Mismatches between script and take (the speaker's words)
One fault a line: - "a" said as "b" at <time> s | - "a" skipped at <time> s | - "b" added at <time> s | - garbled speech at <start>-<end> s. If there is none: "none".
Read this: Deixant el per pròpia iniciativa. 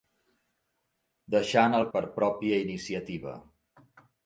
none